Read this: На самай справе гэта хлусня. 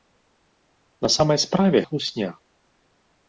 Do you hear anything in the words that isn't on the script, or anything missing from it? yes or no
yes